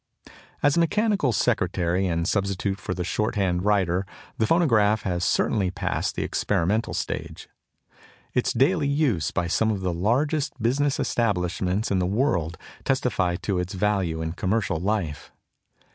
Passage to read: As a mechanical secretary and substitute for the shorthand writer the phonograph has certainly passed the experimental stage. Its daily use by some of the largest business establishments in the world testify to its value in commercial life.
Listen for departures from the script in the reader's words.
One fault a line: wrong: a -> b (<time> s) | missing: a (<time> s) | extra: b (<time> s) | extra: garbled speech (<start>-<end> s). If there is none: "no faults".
no faults